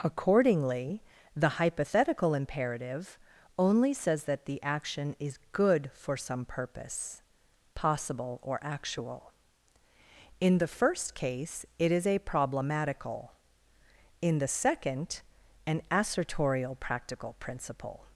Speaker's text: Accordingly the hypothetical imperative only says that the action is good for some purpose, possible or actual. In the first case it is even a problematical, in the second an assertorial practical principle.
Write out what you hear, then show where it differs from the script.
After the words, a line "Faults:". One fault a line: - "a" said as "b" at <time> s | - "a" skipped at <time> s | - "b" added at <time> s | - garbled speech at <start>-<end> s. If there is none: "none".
Accordingly the hypothetical imperative only says that the action is good for some purpose, possible or actual. In the first case it is a problematical, in the second an assertorial practical principle.
Faults:
- "even" skipped at 12.1 s